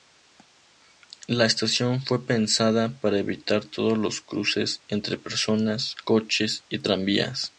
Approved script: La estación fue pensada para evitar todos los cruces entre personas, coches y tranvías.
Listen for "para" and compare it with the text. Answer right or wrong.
right